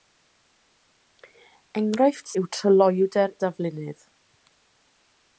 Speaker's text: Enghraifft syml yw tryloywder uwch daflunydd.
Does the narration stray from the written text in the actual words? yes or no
yes